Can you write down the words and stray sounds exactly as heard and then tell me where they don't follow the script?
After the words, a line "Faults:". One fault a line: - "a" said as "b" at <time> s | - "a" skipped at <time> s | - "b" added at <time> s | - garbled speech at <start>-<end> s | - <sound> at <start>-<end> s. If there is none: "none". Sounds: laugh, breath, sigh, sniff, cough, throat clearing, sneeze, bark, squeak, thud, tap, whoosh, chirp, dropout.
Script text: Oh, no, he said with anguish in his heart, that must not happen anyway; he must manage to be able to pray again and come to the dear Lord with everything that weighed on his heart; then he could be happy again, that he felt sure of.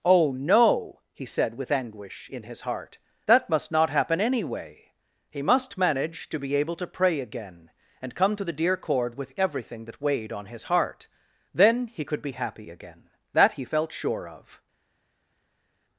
Oh, no, he said with anguish in his heart, that must not happen anyway; he must manage to be able to pray again and come to the dear Cord with everything that weighed on his heart; then he could be happy again, that he felt sure of.
Faults:
- "Lord" said as "Cord" at 8.8 s